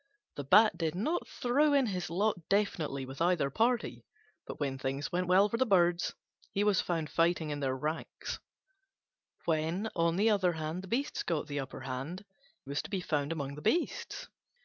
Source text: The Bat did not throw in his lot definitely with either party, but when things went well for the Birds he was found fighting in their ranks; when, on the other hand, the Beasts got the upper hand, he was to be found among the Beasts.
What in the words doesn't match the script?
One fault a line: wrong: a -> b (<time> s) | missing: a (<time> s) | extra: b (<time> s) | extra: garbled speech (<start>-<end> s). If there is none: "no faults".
missing: he (12.2 s)